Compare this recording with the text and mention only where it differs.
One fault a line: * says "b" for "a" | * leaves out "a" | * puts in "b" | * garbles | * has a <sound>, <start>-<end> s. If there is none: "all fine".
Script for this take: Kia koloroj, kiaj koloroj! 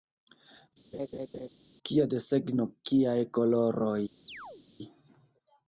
* has a laugh, 0.9-1.5 s
* says "desegno" for "koloroj"
* has a chirp, 4.3-4.7 s